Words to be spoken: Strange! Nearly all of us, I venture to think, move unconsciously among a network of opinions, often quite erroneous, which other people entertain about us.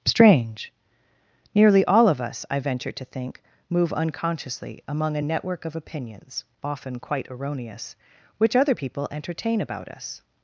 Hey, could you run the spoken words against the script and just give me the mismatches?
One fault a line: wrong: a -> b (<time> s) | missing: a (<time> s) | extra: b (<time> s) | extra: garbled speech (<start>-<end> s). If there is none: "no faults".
no faults